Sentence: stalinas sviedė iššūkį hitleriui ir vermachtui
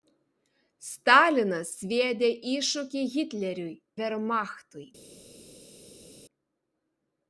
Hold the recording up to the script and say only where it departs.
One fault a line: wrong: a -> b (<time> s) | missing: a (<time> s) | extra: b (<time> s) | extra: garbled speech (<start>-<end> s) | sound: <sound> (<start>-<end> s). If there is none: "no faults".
missing: ir (3.8 s)